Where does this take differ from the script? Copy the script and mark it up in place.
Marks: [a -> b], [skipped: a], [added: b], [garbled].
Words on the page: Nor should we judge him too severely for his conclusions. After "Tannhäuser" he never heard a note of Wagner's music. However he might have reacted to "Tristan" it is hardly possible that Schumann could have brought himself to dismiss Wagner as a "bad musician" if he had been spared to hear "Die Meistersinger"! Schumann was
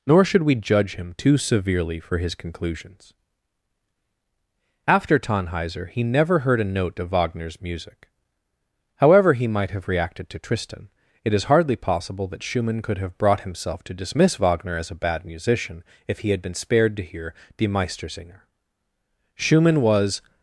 Nor should we judge him too severely for his conclusions. After "Tannhäuser" he never heard a note of Wagner's music. However he might have reacted to "Tristan" it is hardly possible that Schumann could have brought himself to dismiss Wagner as a "bad musician" if he had been spared to hear "Die Meistersinger"! Schumann was